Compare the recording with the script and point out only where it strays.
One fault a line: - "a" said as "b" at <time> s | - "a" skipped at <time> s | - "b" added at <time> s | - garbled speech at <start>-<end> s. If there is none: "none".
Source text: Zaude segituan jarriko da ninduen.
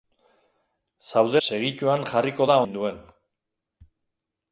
none